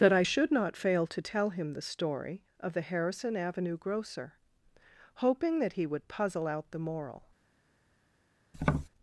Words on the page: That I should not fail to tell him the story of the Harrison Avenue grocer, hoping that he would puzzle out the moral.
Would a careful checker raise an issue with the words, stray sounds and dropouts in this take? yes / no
yes